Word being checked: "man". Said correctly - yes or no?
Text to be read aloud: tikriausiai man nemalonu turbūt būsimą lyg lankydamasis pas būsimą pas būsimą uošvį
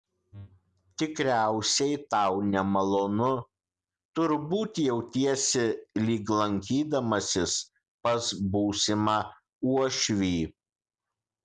no